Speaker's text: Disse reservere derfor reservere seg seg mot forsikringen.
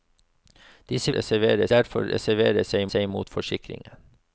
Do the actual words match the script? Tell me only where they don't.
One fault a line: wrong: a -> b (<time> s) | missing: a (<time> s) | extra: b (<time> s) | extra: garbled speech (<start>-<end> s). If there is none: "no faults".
no faults